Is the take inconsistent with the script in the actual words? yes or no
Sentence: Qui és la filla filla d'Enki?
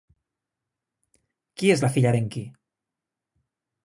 yes